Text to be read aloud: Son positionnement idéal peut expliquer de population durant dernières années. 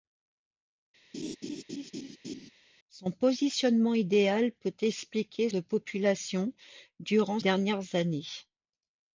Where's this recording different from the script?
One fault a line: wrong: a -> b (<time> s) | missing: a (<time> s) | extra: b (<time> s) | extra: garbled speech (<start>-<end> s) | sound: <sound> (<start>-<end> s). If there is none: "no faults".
sound: laugh (1.1-2.5 s)